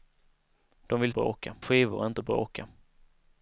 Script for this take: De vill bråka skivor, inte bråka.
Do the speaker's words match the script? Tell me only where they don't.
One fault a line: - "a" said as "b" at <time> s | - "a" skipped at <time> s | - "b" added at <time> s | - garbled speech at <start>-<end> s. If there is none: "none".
none